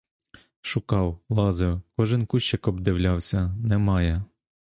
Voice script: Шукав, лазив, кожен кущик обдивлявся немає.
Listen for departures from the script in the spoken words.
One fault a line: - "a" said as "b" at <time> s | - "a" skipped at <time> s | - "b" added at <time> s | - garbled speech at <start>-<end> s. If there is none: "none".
none